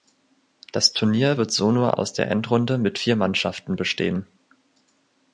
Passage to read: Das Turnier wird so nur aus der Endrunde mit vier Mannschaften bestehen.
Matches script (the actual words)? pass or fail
pass